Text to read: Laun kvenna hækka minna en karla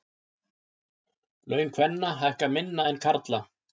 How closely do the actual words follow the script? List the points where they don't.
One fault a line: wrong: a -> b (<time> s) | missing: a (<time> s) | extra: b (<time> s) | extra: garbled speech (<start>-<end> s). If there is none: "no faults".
no faults